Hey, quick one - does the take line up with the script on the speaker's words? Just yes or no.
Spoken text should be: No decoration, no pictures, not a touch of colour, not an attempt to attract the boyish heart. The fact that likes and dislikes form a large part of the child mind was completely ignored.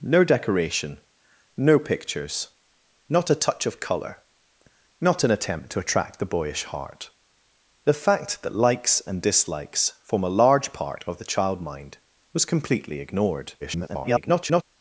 no